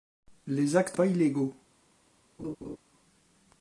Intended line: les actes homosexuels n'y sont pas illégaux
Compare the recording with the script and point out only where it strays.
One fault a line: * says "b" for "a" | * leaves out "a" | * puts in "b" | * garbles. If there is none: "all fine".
* leaves out "homosexuels n'y sont"